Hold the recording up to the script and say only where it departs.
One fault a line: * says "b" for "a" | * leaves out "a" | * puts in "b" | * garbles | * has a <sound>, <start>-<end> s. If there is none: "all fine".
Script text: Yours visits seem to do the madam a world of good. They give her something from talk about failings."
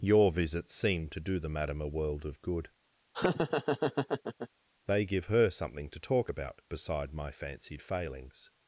* says "Your" for "Yours"
* has a laugh, 3.1-4.5 s
* says "to" for "from"
* puts in "beside my fancied"